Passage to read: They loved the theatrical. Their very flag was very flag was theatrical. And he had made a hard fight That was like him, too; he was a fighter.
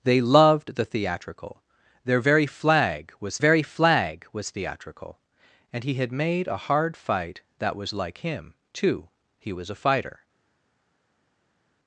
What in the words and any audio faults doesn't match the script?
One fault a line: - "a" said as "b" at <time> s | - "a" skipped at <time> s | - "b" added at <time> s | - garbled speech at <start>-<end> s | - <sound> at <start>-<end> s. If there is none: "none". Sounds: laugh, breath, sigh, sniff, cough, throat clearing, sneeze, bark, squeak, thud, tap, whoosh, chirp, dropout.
none